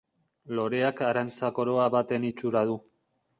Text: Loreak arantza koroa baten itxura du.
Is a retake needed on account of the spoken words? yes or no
no